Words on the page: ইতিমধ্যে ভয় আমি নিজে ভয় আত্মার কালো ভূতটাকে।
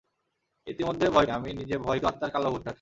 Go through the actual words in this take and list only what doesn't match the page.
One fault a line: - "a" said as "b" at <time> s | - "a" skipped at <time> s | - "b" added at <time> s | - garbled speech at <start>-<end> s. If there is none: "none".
none